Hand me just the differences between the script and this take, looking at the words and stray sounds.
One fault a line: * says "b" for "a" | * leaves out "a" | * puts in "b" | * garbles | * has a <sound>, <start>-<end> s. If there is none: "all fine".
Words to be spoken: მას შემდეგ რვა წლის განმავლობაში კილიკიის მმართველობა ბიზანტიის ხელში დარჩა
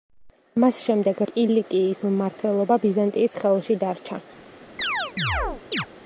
* leaves out "რვა წლის განმავლობაში"
* has a chirp, 4.8-5.9 s